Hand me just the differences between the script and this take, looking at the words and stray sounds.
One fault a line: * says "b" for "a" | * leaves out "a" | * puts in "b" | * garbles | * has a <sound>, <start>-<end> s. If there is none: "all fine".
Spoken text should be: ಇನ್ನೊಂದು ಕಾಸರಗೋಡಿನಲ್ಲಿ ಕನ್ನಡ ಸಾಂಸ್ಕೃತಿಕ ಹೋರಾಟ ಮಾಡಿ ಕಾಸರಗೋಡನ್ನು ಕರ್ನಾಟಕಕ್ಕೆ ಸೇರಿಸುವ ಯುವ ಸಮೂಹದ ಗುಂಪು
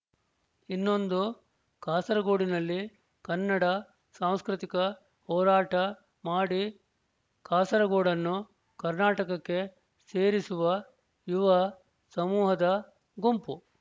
all fine